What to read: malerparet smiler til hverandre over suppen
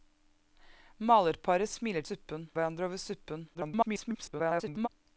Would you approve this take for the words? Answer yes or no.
no